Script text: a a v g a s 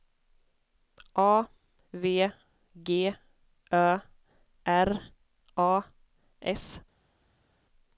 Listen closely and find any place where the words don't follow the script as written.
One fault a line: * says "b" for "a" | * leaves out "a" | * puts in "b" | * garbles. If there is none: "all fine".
* leaves out "a"
* puts in "ö r"